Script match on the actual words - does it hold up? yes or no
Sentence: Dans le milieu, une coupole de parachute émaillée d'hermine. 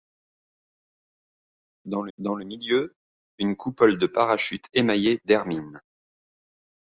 no